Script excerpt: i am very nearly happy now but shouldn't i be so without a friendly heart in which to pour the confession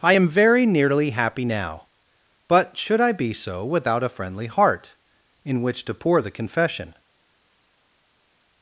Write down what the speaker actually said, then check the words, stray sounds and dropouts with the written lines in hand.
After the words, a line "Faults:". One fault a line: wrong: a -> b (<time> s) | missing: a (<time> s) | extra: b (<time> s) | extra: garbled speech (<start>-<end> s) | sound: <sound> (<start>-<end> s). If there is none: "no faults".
i am very nearly happy now but should i be so without a friendly heart in which to pour the confession
Faults:
wrong: shouldn't -> should (2.8 s)